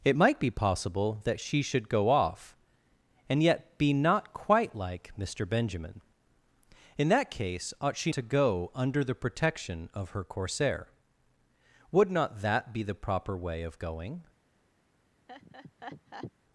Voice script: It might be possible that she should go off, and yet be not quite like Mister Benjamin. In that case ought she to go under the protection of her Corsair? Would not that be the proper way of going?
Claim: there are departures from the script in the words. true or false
false